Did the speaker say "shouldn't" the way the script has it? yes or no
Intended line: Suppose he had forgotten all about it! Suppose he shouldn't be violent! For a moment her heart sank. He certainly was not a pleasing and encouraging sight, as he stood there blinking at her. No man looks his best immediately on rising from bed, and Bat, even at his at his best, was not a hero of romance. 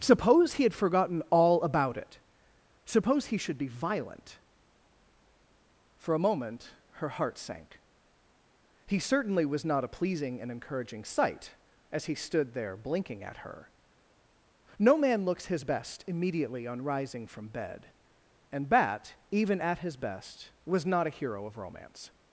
no